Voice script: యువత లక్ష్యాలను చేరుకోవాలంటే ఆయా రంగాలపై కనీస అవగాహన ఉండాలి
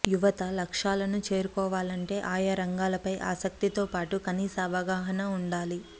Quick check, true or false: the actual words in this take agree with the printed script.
false